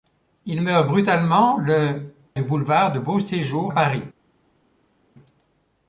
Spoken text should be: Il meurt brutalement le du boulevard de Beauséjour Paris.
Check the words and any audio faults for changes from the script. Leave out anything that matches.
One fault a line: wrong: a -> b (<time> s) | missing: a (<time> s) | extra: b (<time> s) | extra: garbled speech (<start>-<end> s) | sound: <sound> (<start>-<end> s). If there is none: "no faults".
no faults